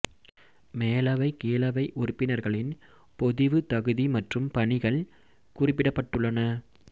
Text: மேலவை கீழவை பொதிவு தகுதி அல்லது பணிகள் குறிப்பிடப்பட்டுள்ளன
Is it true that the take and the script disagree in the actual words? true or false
true